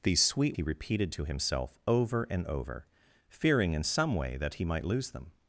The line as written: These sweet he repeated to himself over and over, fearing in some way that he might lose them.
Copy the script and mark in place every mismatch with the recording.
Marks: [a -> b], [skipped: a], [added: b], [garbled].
These sweet he repeated to himself over and over, fearing in some way that he might lose them.